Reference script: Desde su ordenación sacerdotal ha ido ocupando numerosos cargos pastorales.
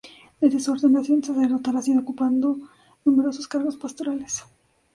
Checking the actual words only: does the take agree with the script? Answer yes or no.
yes